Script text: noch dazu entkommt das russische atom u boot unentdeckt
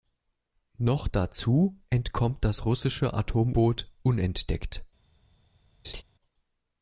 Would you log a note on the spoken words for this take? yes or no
yes